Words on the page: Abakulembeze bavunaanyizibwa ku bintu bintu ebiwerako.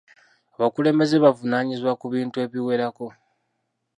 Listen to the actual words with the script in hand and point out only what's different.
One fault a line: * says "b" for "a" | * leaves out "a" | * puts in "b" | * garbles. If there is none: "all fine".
* leaves out "bintu"